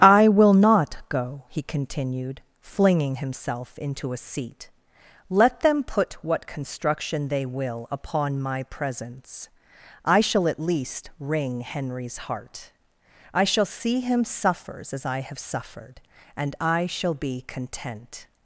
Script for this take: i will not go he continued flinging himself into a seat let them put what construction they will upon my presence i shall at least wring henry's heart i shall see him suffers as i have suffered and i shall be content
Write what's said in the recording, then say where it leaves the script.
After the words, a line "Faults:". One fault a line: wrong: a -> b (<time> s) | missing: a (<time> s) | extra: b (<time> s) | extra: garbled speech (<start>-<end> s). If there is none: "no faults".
i will not go he continued flinging himself into a seat let them put what construction they will upon my presence i shall at least wring henry's heart i shall see him suffers as i have suffered and i shall be content
Faults:
no faults